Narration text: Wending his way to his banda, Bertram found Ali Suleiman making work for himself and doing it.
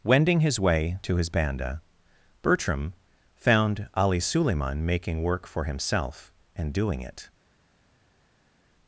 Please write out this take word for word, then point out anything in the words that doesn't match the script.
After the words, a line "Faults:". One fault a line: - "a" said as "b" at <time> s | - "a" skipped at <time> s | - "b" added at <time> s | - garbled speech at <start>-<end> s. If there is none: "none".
Wending his way to his banda, Bertram found Ali Suleiman making work for himself and doing it.
Faults:
none